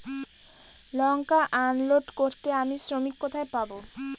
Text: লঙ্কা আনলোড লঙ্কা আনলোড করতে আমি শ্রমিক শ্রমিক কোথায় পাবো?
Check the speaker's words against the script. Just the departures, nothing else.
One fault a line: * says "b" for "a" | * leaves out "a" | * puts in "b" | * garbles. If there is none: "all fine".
* leaves out "লঙ্কা আনলোড"
* leaves out "শ্রমিক"